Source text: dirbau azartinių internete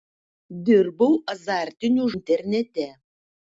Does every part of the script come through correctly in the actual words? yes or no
yes